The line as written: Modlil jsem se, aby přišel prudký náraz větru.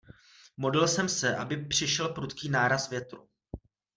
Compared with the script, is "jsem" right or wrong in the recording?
right